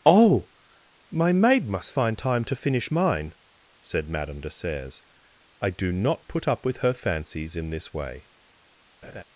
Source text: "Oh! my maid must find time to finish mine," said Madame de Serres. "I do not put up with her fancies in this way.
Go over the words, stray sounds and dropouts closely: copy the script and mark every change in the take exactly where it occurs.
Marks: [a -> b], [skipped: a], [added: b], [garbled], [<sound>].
"Oh! my maid must find time to finish mine," said Madame de Serres. "I do not put up with her fancies in this way. [laugh]